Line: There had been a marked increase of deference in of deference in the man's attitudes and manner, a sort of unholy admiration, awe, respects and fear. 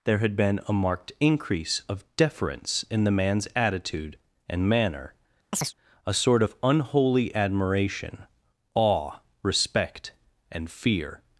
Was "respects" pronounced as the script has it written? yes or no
no